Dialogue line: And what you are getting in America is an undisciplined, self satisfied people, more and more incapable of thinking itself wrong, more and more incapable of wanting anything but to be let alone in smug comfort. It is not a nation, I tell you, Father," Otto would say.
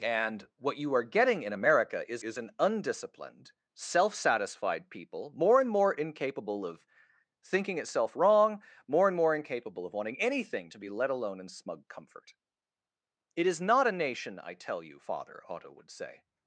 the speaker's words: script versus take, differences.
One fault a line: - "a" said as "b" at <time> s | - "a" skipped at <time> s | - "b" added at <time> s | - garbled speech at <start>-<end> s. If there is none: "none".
- "is" added at 2.2 s
- "but" skipped at 10.7 s